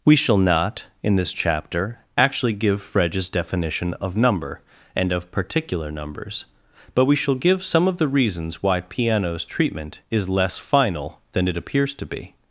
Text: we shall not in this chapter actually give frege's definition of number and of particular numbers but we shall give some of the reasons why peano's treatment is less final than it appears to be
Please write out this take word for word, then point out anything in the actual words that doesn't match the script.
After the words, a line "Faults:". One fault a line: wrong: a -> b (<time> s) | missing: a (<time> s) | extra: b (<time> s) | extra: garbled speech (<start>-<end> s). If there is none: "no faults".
we shall not in this chapter actually give frege's definition of number and of particular numbers but we shall give some of the reasons why peano's treatment is less final than it appears to be
Faults:
no faults